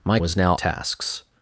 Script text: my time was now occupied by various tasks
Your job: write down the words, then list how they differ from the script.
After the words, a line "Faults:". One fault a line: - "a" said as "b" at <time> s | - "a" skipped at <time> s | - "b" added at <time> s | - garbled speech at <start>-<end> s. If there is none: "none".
my was now tasks
Faults:
- "time" skipped at 0.2 s
- "occupied by various" skipped at 0.6 s